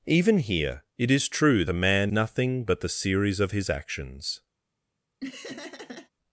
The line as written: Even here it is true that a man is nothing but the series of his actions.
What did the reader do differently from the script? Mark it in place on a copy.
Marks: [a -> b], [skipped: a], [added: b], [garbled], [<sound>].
Even here it is true [skipped: that] a man [skipped: is] nothing but the series of his actions. [laugh]